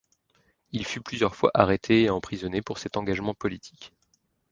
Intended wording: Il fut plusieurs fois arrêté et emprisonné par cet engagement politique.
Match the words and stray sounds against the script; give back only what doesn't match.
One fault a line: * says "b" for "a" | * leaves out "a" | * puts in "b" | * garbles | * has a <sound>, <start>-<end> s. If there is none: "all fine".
* says "pour" for "par"